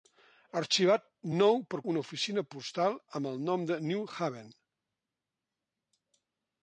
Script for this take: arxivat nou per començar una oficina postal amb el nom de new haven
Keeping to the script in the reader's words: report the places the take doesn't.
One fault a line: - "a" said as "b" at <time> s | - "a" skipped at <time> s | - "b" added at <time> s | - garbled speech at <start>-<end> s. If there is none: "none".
- "començar" skipped at 1.8 s